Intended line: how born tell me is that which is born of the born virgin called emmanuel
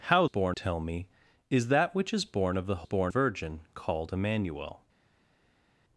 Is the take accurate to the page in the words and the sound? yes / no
yes